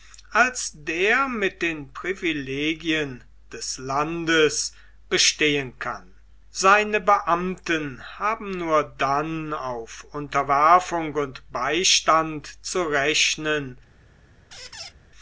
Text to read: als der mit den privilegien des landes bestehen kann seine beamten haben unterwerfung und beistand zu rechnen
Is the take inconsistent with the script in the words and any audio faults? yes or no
yes